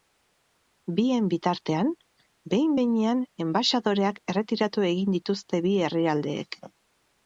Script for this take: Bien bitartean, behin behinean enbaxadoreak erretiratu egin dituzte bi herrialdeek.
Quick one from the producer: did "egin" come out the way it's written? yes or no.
yes